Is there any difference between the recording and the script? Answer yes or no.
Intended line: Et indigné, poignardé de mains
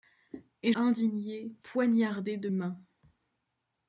no